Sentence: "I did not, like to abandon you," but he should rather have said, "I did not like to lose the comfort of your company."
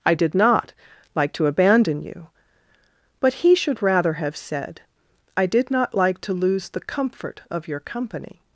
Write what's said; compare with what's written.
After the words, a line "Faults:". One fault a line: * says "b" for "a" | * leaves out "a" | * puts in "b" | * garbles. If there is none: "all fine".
"I did not, like to abandon you," but he should rather have said, "I did not like to lose the comfort of your company."
Faults:
all fine